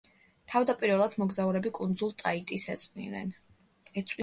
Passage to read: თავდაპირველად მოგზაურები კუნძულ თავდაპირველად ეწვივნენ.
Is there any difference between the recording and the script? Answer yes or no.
yes